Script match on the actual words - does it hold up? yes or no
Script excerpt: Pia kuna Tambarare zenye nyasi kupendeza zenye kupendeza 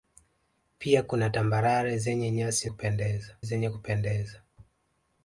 yes